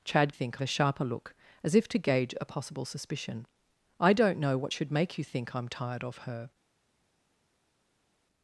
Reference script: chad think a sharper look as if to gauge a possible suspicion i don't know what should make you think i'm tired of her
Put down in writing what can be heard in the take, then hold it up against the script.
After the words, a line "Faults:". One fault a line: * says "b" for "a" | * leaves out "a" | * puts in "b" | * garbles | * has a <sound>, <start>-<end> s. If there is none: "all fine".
chad think a sharper look as if to gauge a possible suspicion i don't know what should make you think i'm tired of her
Faults:
all fine